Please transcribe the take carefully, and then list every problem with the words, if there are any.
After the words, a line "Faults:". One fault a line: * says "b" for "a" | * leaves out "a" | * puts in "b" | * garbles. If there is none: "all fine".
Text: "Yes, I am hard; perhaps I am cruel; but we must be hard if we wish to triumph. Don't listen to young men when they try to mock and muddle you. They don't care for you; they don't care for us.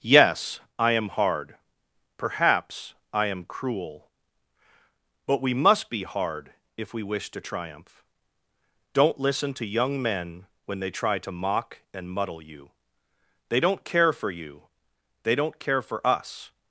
"Yes, I am hard; perhaps I am cruel; but we must be hard if we wish to triumph. Don't listen to young men when they try to mock and muddle you. They don't care for you; they don't care for us.
Faults:
all fine